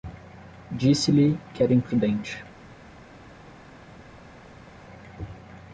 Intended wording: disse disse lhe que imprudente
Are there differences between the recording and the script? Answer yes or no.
yes